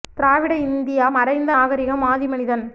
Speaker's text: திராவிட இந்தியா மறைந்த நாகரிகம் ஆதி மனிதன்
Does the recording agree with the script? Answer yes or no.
yes